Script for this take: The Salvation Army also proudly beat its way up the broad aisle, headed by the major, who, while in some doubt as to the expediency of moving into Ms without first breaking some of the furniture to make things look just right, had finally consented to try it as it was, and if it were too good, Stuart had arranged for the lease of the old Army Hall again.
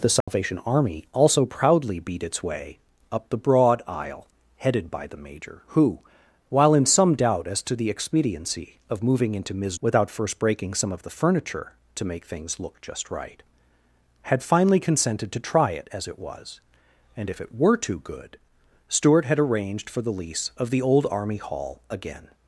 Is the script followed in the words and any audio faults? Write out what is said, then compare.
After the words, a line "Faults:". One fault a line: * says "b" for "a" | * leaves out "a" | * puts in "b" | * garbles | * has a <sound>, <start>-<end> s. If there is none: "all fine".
The Salvation Army also proudly beat its way up the broad aisle, headed by the major, who, while in some doubt as to the expediency of moving into Ms without first breaking some of the furniture to make things look just right, had finally consented to try it as it was, and if it were too good, Stuart had arranged for the lease of the old Army Hall again.
Faults:
* has a dropout, 0.2-0.3 s